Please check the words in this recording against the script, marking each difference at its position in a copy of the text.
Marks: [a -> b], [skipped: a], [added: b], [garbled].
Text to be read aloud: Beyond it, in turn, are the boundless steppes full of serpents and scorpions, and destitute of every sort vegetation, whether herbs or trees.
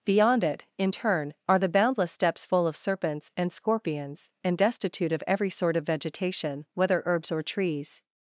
Beyond it, in turn, are the boundless steppes full of serpents and scorpions, and destitute of every sort [added: of] vegetation, whether herbs or trees.